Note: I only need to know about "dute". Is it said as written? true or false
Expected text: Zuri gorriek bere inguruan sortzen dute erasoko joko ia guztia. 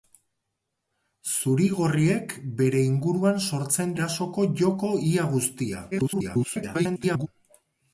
false